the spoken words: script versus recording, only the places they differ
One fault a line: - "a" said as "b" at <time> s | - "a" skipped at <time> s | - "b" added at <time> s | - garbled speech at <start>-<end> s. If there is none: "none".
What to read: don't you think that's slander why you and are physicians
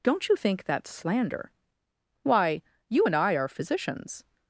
- "i" added at 3.2 s